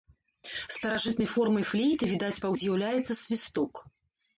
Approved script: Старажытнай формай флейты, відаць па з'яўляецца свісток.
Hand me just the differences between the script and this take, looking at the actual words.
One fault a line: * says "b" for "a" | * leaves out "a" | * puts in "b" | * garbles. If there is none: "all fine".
all fine